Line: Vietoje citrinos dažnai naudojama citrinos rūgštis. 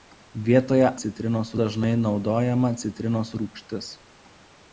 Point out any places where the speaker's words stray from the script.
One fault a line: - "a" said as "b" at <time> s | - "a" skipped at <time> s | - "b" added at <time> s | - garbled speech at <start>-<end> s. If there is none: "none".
none